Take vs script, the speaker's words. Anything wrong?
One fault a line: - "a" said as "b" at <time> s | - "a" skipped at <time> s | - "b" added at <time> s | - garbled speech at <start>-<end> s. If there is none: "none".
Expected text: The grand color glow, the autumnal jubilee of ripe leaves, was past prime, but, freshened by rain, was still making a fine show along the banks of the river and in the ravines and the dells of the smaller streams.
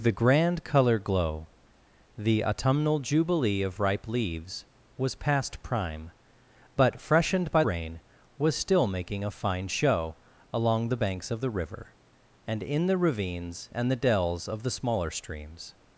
none